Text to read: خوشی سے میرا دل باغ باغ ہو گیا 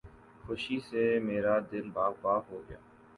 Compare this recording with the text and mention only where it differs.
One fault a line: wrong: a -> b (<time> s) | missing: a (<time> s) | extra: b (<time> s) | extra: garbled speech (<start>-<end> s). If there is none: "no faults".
no faults